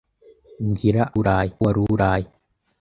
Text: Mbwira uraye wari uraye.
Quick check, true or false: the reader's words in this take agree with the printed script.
true